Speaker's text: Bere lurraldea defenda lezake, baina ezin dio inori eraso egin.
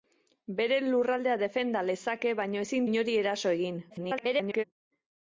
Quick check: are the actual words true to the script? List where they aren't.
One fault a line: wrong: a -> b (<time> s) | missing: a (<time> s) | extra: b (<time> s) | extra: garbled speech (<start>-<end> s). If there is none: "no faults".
missing: dio (2.9 s)
extra: garbled speech (3.9-4.6 s)